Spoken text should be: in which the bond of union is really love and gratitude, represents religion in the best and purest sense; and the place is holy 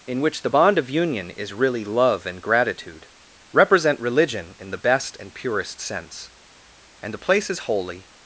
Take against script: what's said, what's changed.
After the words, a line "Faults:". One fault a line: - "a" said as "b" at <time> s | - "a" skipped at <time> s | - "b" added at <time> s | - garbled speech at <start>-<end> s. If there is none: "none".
in which the bond of union is really love and gratitude, represent religion in the best and purest sense; and the place is holy
Faults:
- "represents" said as "represent" at 3.5 s